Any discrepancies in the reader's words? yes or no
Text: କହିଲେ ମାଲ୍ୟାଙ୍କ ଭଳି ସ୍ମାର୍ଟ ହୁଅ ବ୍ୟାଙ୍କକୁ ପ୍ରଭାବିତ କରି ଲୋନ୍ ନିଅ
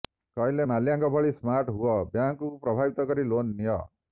no